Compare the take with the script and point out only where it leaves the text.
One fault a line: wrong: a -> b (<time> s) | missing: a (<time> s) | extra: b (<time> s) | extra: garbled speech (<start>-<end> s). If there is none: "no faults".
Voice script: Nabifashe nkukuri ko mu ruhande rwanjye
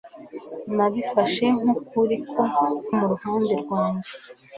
no faults